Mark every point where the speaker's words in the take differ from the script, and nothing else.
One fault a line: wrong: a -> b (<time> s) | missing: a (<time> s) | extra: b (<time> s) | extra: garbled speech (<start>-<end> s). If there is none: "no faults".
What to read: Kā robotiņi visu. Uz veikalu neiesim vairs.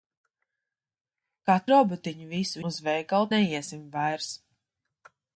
no faults